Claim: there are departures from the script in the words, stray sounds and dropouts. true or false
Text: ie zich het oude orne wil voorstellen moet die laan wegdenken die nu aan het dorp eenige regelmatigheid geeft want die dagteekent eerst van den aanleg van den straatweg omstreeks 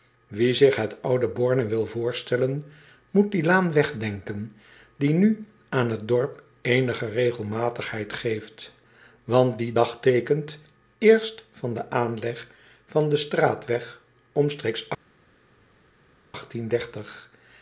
false